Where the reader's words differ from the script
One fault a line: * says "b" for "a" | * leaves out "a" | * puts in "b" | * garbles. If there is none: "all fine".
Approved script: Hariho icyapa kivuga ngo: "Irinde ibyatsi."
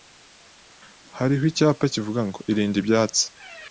all fine